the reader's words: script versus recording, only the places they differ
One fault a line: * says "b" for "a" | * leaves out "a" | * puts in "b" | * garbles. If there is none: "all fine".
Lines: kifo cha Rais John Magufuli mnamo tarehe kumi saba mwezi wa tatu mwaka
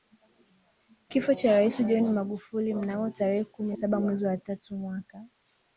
all fine